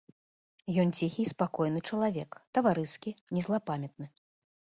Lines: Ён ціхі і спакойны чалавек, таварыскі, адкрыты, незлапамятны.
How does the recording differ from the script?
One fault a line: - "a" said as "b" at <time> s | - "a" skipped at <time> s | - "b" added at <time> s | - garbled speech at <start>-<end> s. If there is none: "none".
- "адкрыты" skipped at 3.1 s